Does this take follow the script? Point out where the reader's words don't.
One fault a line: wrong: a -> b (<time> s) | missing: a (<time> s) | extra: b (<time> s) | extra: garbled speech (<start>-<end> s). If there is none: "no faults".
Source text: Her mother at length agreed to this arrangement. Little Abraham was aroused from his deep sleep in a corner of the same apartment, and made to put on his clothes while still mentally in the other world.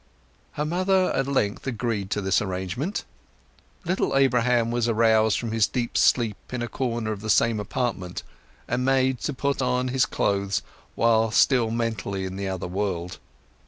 no faults